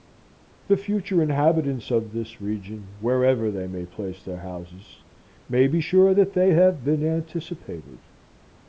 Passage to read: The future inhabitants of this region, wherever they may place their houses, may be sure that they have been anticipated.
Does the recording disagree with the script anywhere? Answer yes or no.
no